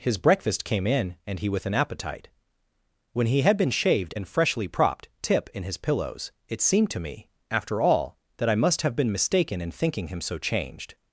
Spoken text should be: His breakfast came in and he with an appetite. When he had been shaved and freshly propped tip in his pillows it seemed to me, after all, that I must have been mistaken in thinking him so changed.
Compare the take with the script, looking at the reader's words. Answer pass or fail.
pass